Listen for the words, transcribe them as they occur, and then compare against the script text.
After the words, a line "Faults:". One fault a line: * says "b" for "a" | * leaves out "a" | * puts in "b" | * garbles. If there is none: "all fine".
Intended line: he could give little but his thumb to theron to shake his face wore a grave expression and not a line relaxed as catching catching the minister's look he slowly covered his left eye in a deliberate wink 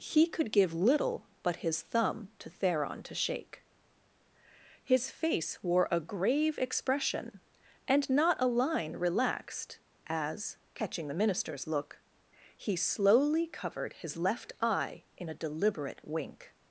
he could give little but his thumb to theron to shake his face wore a grave expression and not a line relaxed as catching the minister's look he slowly covered his left eye in a deliberate wink
Faults:
* leaves out "catching"